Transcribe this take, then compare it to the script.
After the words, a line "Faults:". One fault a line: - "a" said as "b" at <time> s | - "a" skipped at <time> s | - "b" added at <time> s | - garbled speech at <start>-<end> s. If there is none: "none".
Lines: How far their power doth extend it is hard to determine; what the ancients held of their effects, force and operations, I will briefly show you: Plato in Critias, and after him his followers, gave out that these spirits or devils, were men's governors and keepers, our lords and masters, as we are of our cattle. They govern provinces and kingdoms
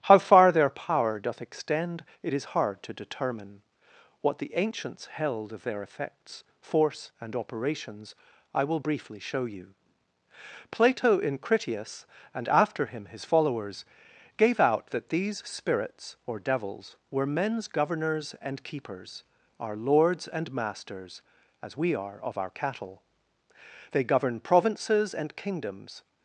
How far their power doth extend it is hard to determine; what the ancients held of their effects, force and operations, I will briefly show you: Plato in Critias, and after him his followers, gave out that these spirits or devils, were men's governors and keepers, our lords and masters, as we are of our cattle. They govern provinces and kingdoms
Faults:
none